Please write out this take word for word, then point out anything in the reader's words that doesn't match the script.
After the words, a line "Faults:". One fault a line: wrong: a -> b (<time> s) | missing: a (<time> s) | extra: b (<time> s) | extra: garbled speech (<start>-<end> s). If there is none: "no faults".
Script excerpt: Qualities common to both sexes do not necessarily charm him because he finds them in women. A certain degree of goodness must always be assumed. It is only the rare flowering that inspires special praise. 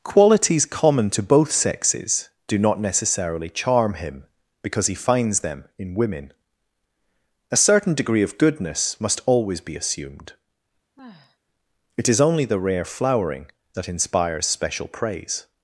Qualities common to both sexes do not necessarily charm him because he finds them in women. A certain degree of goodness must always be assumed. It is only the rare flowering that inspires special praise.
Faults:
no faults